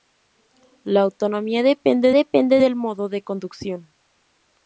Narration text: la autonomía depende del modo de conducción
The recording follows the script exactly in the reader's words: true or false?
false